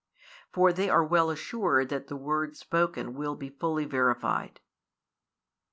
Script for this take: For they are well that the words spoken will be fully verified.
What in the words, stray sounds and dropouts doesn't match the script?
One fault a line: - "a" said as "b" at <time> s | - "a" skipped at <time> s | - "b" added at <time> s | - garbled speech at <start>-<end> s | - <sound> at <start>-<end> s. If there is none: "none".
- "assured" added at 1.3 s